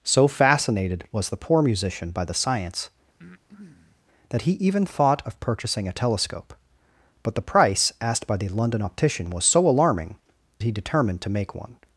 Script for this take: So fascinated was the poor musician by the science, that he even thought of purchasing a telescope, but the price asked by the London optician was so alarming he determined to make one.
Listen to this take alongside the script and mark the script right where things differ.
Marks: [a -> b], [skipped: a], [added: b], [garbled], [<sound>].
So fascinated was the poor musician by the science, [breath] that he even thought of purchasing a telescope, but the price asked by the London optician was so alarming he determined to make one.